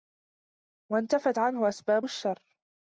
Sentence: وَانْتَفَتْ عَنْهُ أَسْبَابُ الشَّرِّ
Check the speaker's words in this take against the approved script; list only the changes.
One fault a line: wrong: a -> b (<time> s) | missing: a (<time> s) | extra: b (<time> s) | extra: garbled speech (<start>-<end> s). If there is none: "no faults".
no faults